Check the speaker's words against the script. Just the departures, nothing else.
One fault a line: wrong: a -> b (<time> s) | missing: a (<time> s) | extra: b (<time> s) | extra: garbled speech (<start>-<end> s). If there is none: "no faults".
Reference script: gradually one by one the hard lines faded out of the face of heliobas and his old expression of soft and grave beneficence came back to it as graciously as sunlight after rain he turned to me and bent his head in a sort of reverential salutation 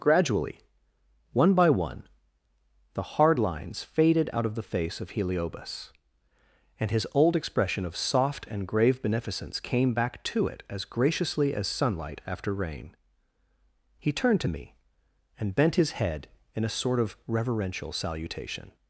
no faults